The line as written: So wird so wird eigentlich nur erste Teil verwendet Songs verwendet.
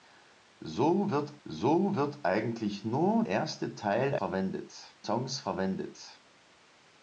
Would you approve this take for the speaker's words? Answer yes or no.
yes